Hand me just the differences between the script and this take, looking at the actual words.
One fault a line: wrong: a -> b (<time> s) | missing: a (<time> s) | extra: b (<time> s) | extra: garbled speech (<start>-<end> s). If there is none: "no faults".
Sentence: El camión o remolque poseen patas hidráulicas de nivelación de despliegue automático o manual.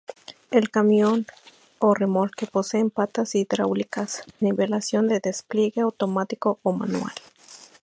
missing: de (4.2 s)